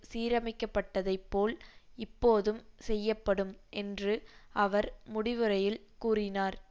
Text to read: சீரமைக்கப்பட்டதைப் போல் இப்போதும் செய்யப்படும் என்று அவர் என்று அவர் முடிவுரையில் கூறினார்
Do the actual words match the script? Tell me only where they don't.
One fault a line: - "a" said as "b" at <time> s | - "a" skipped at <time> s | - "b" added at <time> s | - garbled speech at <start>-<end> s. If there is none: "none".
- "என்று அவர்" skipped at 4.9 s